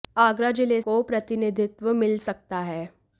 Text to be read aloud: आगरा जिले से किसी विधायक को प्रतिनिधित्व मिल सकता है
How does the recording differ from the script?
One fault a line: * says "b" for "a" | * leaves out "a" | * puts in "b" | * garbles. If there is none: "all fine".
* leaves out "से किसी विधायक"